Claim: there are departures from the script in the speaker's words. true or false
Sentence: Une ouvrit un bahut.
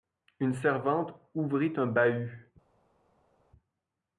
true